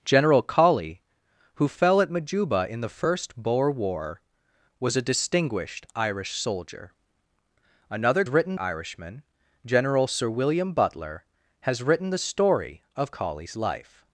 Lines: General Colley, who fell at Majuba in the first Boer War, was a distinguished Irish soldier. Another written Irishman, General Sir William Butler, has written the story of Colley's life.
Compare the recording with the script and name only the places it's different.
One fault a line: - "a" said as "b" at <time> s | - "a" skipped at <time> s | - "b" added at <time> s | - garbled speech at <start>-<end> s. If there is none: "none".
none